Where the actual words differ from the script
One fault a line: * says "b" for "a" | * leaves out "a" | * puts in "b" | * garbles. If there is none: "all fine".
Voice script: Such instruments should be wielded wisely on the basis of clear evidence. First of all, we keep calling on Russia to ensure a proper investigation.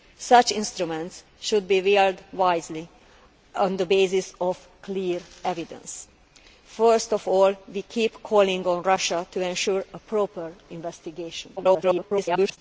* garbles